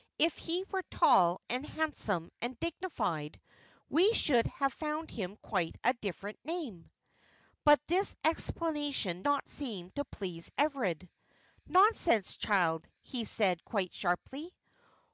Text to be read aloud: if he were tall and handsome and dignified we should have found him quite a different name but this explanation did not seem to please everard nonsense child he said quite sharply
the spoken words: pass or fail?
fail